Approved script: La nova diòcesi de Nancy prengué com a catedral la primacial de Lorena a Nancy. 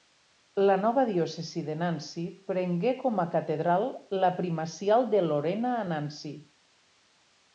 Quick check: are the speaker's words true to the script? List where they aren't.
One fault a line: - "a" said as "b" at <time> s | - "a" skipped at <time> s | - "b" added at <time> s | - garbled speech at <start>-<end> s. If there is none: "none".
none